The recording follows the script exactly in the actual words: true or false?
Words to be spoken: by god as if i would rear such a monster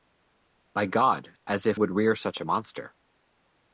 false